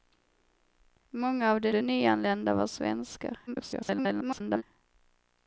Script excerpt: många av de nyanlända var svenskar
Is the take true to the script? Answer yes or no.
no